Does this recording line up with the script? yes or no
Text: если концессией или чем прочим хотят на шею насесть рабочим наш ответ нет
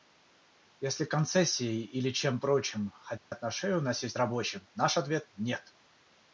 yes